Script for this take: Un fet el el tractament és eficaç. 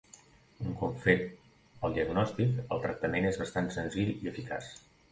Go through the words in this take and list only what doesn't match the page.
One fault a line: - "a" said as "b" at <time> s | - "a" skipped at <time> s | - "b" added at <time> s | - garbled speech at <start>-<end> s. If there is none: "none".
- "cop" added at 0.8 s
- "diagnòstic" added at 2.0 s
- "bastant senzill i" added at 3.5 s